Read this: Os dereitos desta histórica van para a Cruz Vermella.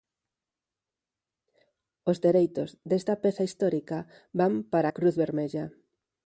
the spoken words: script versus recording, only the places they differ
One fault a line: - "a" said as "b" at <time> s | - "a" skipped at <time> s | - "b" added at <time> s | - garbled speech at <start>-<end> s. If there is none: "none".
- "peza" added at 3.2 s